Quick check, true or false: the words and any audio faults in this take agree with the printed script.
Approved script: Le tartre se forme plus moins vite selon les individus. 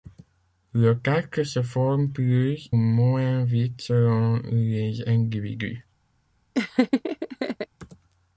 false